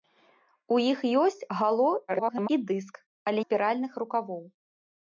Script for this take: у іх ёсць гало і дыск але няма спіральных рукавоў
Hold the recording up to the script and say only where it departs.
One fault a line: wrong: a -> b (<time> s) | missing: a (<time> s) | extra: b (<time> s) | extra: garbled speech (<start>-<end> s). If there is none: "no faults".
extra: garbled speech (2.1-2.5 s)
missing: няма (3.4 s)